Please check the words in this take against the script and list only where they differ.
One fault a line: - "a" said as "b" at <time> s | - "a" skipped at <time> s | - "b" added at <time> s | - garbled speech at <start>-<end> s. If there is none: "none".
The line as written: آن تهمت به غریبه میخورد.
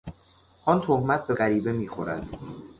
none